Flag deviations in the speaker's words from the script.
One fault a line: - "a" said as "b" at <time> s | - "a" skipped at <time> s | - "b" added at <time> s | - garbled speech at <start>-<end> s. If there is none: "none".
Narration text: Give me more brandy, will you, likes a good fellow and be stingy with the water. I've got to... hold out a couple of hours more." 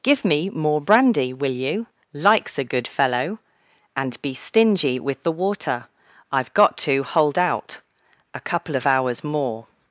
none